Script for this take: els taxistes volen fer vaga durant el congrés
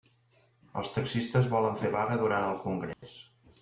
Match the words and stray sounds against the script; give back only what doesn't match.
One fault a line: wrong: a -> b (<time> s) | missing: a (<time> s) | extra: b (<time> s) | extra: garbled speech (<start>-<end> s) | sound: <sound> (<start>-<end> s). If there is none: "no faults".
sound: dropout (2.9-3.0 s)